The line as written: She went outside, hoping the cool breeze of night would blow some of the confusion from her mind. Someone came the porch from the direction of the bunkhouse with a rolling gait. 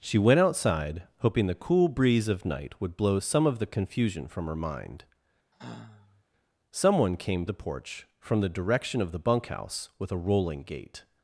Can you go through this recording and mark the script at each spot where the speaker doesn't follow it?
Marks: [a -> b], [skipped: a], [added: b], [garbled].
She went outside, hoping the cool breeze of night would blow some of the confusion from her mind. Someone came the porch from the direction of the bunkhouse with a rolling gait.